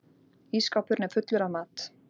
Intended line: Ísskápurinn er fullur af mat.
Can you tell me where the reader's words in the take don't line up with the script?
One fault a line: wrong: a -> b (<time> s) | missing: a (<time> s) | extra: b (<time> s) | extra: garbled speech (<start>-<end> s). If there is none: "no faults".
no faults